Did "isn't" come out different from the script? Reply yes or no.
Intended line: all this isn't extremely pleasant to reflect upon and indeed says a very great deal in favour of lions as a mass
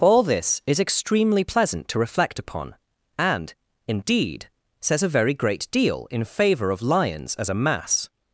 yes